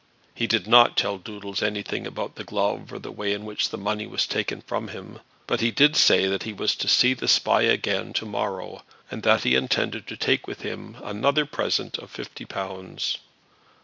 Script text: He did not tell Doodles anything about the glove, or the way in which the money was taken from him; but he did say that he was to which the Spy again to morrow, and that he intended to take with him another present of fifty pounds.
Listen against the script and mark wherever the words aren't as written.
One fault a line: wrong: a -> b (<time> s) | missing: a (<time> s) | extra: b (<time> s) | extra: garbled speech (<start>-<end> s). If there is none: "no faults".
wrong: which -> see (6.9 s)